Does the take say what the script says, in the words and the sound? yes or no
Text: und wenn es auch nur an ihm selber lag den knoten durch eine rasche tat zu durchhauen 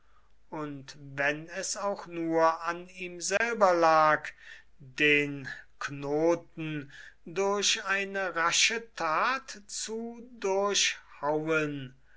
no